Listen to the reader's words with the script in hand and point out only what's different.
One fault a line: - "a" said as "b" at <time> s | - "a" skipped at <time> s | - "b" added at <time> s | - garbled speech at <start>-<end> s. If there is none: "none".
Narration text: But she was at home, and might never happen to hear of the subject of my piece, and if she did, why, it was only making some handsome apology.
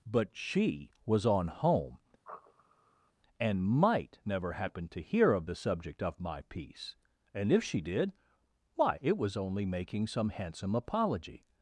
- "at" said as "on" at 1.2 s